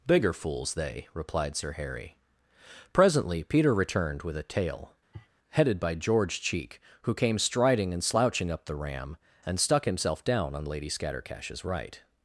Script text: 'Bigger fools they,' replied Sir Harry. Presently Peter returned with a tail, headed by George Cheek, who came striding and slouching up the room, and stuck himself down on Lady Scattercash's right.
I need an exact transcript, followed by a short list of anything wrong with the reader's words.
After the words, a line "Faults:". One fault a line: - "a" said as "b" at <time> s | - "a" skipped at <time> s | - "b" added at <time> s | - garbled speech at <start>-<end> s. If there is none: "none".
'Bigger fools they,' replied Sir Harry. Presently Peter returned with a tail, headed by George Cheek, who came striding and slouching up the ram, and stuck himself down on Lady Scattercash's right.
Faults:
- "room" said as "ram" at 8.8 s